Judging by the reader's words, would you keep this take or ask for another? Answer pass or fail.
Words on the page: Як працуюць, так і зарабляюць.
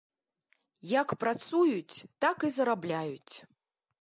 pass